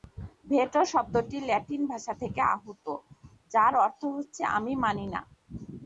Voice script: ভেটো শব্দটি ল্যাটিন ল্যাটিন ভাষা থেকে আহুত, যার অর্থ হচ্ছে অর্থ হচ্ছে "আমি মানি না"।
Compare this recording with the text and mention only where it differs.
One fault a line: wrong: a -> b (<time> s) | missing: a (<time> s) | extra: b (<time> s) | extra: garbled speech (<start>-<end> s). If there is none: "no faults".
missing: ল্যাটিন (1.8 s)
missing: অর্থ হচ্ছে (4.4 s)